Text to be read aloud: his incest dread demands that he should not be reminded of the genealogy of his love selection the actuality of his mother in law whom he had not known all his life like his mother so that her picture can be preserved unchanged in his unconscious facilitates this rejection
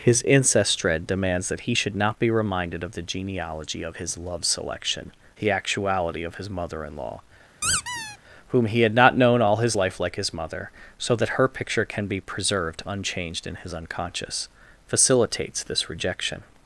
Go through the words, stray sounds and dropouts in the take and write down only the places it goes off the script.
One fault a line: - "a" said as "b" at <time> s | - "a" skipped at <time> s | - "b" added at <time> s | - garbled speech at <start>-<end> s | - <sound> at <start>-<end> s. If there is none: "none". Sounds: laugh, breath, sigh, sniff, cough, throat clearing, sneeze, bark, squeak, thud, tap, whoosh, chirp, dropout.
- squeak at 7.6-8.2 s